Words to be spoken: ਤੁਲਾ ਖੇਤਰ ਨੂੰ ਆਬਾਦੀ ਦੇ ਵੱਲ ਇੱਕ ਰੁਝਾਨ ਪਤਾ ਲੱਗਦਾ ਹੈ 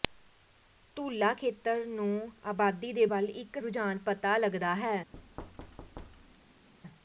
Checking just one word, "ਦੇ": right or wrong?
right